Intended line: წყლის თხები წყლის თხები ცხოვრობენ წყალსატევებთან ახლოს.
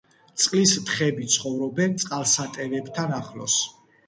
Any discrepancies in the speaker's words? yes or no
yes